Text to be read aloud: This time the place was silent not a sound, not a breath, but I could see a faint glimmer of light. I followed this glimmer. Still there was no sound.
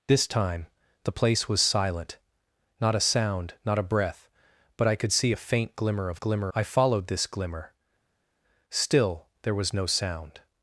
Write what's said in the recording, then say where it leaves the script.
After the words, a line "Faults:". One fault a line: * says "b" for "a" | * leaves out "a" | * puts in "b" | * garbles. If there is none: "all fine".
This time the place was silent not a sound, not a breath, but I could see a faint glimmer of glimmer. I followed this glimmer. Still there was no sound.
Faults:
* says "glimmer" for "light"